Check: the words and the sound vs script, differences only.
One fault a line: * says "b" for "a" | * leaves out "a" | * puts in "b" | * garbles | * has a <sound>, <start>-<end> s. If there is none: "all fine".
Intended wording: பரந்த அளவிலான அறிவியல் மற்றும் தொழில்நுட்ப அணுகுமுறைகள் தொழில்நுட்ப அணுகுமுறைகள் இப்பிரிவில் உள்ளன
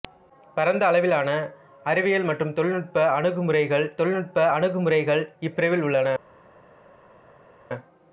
all fine